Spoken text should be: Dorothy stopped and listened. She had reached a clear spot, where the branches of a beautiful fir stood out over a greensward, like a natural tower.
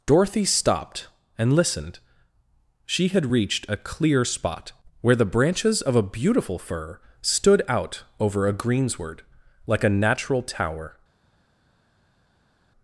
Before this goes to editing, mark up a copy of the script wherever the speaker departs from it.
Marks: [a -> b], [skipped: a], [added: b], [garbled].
Dorothy stopped and listened. She had reached a clear spot, where the branches of a beautiful fir stood out over a greensward, like a natural tower.